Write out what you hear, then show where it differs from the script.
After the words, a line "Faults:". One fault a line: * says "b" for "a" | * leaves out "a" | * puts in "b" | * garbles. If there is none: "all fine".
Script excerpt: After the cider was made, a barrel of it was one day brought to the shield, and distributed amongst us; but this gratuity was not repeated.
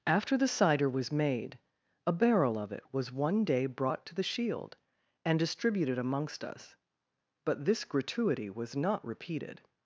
After the cider was made, a barrel of it was one day brought to the shield, and distributed amongst us; but this gratuity was not repeated.
Faults:
all fine